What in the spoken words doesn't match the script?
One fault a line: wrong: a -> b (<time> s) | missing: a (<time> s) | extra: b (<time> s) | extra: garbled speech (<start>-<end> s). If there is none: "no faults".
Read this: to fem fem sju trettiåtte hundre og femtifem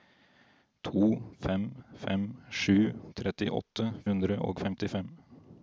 no faults